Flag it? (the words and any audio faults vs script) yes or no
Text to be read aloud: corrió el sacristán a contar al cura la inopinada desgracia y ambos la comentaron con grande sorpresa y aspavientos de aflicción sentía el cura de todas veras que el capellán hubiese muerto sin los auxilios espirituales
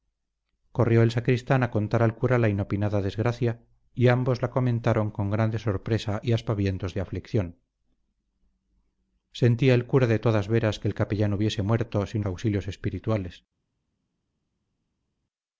yes